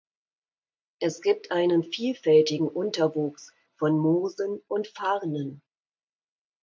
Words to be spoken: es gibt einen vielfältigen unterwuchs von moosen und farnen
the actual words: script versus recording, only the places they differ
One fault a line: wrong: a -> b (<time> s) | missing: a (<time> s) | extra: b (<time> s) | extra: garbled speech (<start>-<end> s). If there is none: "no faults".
no faults